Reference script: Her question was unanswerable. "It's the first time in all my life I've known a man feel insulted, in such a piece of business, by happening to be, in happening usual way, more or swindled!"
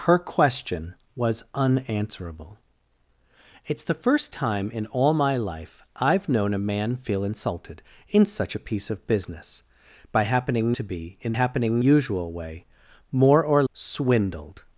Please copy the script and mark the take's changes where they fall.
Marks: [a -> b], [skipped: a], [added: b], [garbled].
Her question was unanswerable. "It's the first time in all my life I've known a man feel insulted, in such a piece of business, by happening to be, in happening usual way, more or swindled!"